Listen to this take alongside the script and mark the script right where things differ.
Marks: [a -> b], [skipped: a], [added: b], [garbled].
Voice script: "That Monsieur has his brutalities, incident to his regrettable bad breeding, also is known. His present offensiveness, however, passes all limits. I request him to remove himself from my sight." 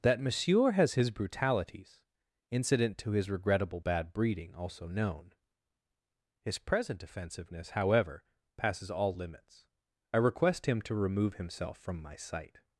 "That Monsieur has his brutalities, incident to his regrettable bad breeding, also [skipped: is] known. His present offensiveness, however, passes all limits. I request him to remove himself from my sight."